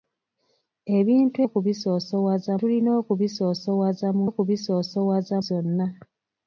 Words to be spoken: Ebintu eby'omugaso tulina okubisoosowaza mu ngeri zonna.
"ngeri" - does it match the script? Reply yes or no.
no